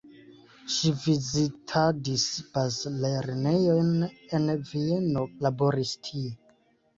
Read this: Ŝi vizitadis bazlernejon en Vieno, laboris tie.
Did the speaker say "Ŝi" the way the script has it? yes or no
yes